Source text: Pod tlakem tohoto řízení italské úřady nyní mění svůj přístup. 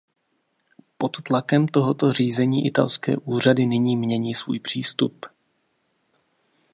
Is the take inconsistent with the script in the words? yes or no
no